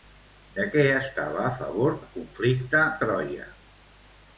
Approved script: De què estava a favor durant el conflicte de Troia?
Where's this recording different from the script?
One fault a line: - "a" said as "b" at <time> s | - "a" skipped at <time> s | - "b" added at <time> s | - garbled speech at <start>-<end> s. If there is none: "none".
- "durant" skipped at 2.0 s
- "de" skipped at 2.9 s